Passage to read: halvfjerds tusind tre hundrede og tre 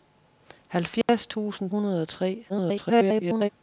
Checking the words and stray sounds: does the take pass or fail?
fail